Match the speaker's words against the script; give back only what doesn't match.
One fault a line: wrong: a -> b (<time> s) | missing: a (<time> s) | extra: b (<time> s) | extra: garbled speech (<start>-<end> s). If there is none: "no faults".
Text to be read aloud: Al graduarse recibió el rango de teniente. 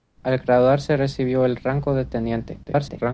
extra: garbled speech (2.7-3.1 s)